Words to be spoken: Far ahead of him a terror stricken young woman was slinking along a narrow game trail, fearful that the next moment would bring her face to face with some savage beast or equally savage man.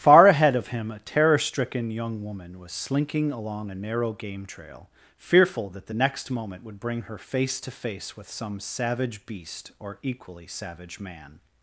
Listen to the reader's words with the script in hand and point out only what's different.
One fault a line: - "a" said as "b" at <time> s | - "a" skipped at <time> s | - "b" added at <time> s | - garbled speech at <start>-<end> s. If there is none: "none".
none